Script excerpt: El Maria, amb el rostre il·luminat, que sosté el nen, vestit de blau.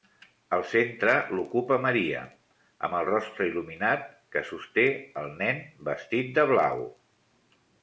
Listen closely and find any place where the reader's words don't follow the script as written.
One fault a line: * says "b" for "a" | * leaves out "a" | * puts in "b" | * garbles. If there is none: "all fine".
* puts in "centre l'ocupa"